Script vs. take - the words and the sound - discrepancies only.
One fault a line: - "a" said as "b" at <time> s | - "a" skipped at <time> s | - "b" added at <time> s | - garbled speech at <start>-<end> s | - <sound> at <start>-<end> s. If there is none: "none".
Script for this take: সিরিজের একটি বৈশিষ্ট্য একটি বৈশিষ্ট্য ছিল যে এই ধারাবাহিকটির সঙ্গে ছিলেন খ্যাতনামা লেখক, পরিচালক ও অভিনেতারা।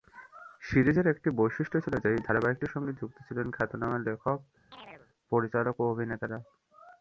- "একটি বৈশিষ্ট্য" skipped at 1.8 s
- "যুক্ত" added at 3.0 s
- chirp at 4.7-5.1 s